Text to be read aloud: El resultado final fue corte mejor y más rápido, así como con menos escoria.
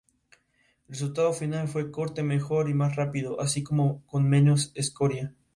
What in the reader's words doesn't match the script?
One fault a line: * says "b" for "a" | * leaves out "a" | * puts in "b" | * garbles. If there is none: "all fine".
all fine